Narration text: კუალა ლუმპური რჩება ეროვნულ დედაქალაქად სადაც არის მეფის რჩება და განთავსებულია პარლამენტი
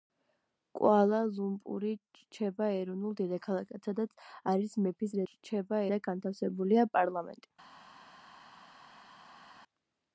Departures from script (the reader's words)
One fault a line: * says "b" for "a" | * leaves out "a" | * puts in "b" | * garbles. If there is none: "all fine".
all fine